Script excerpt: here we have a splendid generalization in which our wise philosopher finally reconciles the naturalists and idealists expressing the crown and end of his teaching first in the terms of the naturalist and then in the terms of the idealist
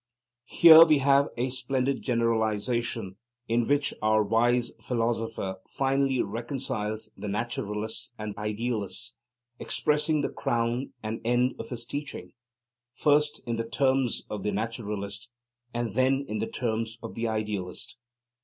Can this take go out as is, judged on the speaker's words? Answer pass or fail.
pass